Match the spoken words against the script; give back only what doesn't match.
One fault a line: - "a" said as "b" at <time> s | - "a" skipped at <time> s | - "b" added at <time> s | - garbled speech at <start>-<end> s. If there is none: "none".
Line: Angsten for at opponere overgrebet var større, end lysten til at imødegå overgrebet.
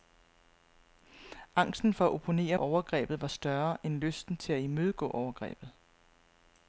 none